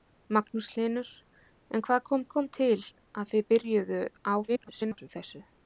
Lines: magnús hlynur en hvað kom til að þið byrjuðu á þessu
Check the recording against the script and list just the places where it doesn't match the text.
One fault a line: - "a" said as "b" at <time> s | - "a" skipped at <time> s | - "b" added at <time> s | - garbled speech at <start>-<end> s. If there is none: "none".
- "kom" added at 2.3 s
- garbled speech at 4.5-5.1 s